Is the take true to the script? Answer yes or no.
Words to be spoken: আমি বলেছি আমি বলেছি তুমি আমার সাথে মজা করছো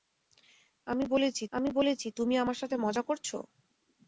yes